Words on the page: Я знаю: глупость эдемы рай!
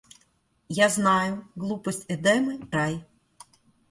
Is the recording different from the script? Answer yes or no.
no